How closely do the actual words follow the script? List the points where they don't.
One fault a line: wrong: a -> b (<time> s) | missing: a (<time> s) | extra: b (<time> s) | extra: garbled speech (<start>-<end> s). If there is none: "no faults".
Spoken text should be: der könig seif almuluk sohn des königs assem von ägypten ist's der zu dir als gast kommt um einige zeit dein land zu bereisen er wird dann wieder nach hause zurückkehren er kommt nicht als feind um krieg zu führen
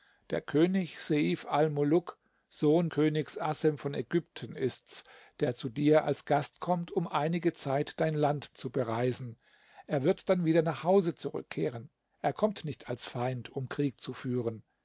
missing: des (2.9 s)